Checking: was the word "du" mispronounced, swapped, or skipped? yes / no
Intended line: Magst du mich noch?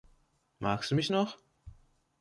no